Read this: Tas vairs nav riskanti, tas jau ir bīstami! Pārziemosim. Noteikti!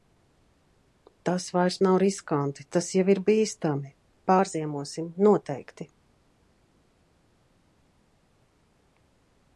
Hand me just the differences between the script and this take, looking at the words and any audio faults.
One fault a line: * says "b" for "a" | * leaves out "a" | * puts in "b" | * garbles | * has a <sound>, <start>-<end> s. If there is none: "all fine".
all fine